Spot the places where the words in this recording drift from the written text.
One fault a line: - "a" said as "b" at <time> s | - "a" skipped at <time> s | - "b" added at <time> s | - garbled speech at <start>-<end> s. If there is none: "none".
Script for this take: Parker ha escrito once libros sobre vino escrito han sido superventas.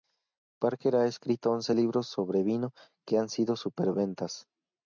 - "escrito" said as "que" at 3.0 s